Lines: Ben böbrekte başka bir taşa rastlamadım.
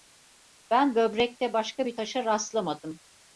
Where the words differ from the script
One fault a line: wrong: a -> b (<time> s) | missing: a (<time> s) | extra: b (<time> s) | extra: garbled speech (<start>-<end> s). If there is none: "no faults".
no faults